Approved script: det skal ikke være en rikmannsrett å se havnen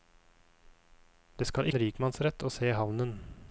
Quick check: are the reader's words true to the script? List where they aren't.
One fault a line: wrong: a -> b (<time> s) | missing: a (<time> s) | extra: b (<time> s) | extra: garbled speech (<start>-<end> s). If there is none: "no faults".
missing: ikke være (1.7 s)